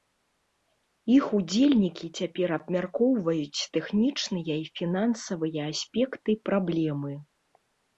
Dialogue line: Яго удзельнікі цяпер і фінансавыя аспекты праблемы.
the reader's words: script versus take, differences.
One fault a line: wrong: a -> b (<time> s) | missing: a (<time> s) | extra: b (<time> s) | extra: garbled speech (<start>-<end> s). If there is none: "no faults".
wrong: Яго -> Іх (1.1 s)
extra: абмяркоўваюць тэхнічныя (2.6 s)